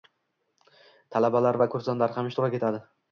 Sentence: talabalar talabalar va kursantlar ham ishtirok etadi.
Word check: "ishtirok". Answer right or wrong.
right